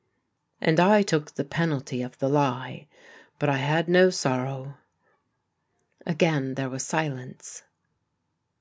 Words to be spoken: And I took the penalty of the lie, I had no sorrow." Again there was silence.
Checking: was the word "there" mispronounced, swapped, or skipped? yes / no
no